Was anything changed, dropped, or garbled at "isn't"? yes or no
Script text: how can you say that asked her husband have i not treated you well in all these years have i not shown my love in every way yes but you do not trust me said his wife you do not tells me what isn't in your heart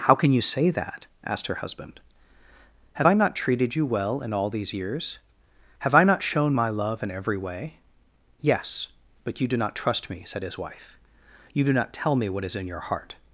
yes